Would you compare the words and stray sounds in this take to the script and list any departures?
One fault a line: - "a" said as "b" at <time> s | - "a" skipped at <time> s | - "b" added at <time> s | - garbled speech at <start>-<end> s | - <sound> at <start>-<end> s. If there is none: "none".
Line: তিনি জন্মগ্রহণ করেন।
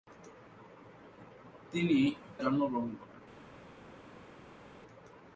none